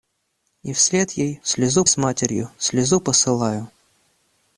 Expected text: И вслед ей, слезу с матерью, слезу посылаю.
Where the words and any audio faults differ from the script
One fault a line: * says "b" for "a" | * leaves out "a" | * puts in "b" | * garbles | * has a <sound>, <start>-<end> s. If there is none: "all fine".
all fine